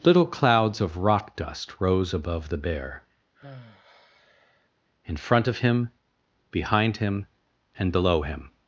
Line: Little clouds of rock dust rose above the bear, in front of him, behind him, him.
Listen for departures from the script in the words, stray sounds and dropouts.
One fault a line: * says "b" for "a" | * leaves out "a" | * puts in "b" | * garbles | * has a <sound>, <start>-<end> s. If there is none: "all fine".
* has a sigh, 3.3-4.7 s
* puts in "and below"